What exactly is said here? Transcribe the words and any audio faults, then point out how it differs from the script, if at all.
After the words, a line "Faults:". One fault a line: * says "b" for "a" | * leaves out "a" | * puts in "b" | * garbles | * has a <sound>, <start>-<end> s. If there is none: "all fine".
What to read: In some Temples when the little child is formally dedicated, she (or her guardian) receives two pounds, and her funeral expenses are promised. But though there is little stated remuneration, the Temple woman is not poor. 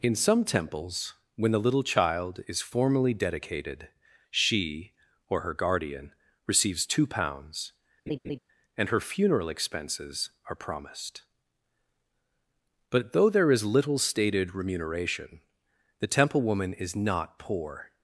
In some Temples when the little child is formally dedicated, she (or her guardian) receives two pounds, and her funeral expenses are promised. But though there is little stated remuneration, the Temple woman is not poor.
Faults:
* has a laugh, 8.1-8.4 s